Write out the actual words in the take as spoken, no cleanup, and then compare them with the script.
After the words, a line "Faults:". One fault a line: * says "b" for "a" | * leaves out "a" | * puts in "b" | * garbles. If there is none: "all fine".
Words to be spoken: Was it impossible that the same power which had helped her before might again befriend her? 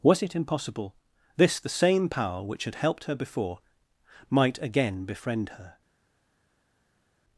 Was it impossible this the same power which had helped her before might again befriend her?
Faults:
* says "this" for "that"